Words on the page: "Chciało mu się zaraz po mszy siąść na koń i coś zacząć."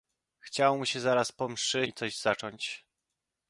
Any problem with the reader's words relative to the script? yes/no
yes